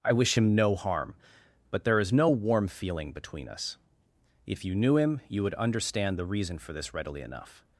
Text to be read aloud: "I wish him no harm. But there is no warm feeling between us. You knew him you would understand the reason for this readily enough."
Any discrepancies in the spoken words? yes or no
yes